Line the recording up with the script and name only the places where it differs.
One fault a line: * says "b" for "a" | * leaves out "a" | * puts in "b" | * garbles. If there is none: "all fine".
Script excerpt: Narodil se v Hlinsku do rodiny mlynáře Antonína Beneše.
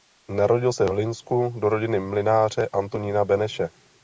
all fine